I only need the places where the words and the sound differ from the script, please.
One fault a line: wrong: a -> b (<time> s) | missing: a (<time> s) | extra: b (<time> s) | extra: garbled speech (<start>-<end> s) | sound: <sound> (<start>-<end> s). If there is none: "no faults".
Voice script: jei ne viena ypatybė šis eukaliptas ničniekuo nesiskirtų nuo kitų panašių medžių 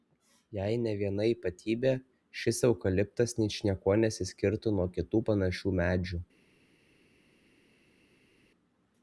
no faults